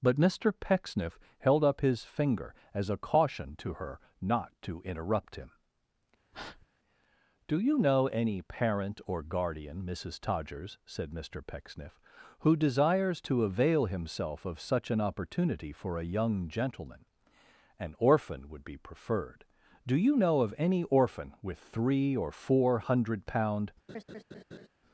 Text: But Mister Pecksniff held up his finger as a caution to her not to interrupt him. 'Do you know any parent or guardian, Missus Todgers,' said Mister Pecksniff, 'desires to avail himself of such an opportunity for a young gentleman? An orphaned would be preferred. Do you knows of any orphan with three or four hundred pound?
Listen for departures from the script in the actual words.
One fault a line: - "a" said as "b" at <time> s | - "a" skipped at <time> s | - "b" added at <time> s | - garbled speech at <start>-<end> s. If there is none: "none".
- "who" added at 12.4 s
- "orphaned" said as "orphan" at 18.0 s
- "knows" said as "know" at 20.1 s